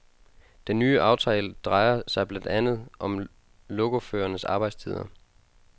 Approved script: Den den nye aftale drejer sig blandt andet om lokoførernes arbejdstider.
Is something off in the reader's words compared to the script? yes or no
yes